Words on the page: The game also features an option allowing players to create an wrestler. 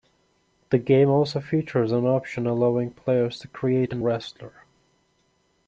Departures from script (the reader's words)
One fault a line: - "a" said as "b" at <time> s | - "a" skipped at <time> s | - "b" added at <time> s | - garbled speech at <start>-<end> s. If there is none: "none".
none